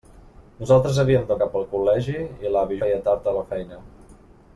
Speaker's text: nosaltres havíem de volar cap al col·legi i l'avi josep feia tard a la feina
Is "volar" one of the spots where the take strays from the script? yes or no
yes